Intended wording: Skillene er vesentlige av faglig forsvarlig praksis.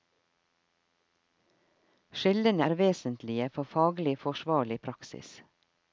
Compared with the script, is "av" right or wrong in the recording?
wrong